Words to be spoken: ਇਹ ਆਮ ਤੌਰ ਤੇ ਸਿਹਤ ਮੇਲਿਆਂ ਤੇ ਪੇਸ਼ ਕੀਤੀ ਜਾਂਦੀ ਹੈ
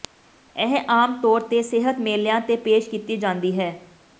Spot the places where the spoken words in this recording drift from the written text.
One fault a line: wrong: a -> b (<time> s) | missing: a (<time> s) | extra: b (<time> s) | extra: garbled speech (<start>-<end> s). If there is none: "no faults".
no faults